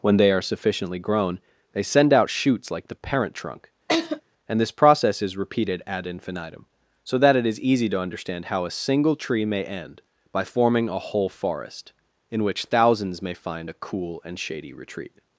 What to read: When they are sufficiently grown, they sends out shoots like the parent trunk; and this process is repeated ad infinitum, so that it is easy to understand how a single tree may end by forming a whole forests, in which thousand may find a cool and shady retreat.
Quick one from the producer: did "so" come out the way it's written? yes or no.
yes